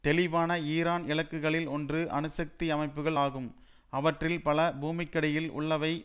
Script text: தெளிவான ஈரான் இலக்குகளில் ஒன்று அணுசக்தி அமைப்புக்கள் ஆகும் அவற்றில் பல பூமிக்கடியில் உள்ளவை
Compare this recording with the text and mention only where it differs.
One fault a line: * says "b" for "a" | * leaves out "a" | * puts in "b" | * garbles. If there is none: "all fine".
all fine